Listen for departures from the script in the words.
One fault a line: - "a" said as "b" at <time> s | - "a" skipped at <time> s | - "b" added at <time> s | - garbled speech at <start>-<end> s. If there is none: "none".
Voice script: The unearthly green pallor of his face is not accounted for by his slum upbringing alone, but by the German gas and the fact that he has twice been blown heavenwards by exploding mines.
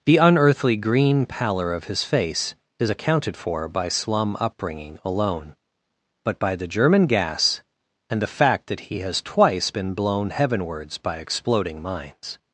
- "not" skipped at 2.9 s
- "his" skipped at 3.9 s